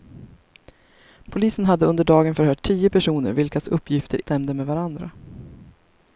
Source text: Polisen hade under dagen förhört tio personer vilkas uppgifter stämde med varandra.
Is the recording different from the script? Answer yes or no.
no